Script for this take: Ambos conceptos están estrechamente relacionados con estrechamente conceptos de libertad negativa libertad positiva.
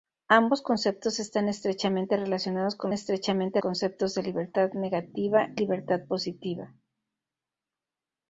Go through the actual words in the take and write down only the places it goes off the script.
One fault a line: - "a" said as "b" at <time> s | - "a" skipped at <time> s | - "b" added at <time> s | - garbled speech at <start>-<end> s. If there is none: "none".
none